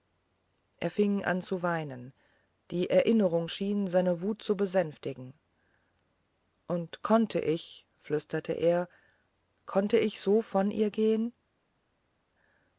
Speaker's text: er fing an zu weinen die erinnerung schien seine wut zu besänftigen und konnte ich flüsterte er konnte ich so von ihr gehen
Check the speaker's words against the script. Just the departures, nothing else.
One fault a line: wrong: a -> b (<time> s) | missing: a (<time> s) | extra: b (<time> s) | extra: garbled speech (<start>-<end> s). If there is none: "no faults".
no faults